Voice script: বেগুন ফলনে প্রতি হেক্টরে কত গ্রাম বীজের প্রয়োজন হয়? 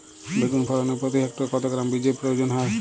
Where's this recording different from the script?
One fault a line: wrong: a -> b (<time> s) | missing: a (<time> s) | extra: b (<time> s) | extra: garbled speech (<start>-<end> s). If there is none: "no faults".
no faults